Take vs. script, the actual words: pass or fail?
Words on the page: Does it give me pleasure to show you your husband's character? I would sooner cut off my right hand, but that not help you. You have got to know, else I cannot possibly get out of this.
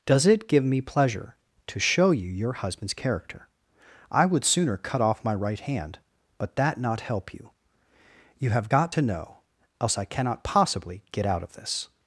pass